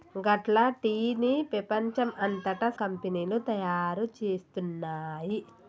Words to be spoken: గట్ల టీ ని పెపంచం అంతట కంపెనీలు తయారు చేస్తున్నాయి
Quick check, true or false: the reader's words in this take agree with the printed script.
true